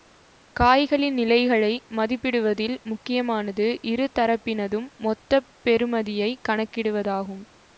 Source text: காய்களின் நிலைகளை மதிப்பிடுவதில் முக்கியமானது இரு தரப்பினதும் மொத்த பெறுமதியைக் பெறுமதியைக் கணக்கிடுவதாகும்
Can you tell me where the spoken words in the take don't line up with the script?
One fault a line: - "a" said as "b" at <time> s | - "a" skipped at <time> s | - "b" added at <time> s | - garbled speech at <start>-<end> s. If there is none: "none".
- "பெறுமதியைக்" skipped at 6.4 s